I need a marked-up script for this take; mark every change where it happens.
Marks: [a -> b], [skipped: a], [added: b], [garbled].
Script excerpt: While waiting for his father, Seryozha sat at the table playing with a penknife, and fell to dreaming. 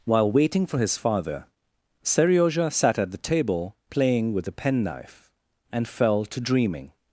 While waiting for his father, Seryozha sat at the table playing with a penknife, and fell to dreaming.